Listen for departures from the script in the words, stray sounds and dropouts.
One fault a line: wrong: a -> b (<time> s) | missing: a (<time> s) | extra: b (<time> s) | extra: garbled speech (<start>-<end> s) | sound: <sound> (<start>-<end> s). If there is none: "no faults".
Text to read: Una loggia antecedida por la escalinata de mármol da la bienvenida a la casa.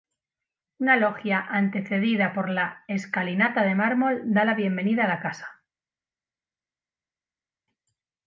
no faults